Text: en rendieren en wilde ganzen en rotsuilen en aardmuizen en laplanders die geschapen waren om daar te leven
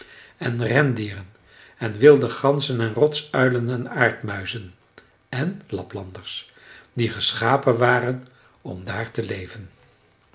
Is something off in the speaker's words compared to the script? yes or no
no